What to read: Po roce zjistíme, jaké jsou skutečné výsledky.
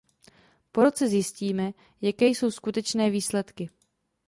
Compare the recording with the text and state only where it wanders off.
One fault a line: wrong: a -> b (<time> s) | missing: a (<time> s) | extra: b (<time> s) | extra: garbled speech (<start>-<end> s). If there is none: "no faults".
no faults